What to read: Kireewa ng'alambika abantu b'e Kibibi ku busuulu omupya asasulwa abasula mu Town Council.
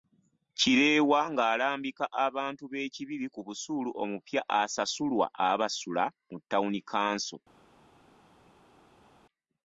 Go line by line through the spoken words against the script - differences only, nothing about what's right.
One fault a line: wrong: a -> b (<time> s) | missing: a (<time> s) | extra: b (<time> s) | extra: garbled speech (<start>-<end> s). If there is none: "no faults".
no faults